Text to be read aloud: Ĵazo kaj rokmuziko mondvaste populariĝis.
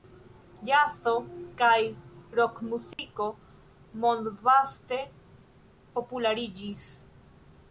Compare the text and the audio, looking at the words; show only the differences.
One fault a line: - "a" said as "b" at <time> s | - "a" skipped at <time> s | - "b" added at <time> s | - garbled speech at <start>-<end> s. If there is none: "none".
none